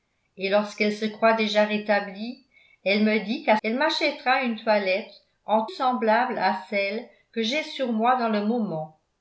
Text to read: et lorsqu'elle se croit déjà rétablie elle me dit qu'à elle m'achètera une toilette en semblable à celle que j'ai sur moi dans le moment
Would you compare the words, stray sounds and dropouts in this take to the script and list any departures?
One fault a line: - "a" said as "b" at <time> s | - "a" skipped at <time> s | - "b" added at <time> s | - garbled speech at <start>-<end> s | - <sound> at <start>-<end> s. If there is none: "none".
none